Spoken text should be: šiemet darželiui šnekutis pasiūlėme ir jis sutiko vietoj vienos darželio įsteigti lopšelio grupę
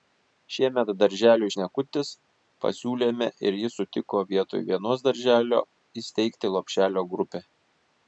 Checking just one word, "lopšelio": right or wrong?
right